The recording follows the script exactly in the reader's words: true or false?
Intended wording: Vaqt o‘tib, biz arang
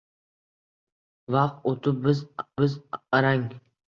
false